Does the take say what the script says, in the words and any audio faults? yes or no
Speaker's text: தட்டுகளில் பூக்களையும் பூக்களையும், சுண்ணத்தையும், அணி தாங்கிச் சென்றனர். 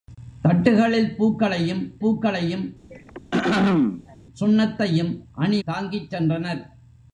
no